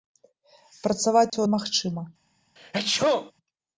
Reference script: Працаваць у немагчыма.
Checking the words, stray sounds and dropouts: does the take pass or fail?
fail